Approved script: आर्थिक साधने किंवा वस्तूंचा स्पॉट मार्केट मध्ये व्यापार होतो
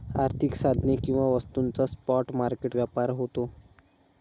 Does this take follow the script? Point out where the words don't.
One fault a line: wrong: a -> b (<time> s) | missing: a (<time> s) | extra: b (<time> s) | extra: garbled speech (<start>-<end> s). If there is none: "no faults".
missing: मध्ये (2.8 s)